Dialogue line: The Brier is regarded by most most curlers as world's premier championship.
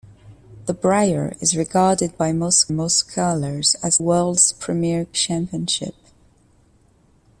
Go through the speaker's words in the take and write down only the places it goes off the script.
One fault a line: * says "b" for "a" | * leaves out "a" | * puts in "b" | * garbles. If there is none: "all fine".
all fine